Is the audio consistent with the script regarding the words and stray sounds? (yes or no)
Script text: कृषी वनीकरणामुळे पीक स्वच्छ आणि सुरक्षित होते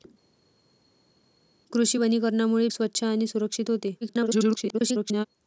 no